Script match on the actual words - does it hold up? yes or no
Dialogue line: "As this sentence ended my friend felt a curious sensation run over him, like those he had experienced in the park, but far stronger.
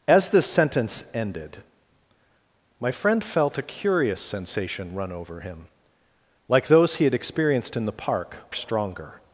no